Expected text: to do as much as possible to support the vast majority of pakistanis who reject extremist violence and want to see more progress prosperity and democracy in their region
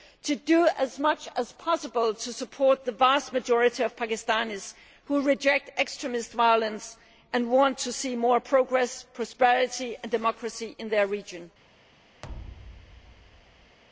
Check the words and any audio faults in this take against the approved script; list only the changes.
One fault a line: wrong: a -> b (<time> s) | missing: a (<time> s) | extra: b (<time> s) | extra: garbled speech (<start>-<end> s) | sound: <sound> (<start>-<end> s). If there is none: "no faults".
sound: thud (12.2-13.8 s)